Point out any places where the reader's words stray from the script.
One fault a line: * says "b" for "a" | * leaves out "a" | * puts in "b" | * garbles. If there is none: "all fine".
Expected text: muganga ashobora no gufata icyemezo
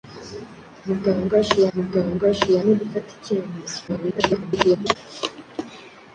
* puts in "muganga ashobora"
* garbles